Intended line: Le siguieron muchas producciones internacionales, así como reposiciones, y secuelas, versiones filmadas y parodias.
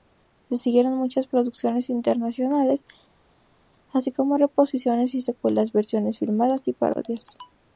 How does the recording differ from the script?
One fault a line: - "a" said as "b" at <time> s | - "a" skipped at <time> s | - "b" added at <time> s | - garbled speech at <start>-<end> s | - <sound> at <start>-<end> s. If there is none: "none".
none